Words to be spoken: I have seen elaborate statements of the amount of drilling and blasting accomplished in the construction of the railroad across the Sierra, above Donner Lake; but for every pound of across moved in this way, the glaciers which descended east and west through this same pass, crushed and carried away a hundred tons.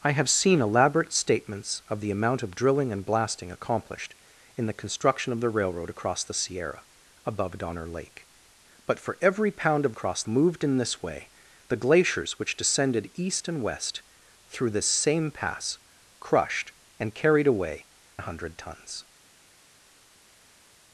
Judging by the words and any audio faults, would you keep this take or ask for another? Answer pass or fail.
pass